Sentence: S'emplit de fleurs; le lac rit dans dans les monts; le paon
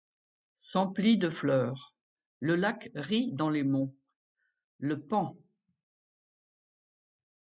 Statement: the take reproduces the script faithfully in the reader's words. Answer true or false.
false